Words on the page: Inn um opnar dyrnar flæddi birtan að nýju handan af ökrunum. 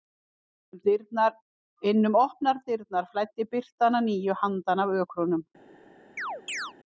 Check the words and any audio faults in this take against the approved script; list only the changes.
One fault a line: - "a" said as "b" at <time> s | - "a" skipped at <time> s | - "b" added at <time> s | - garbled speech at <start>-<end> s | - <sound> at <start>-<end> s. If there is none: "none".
- chirp at 6.2-6.7 s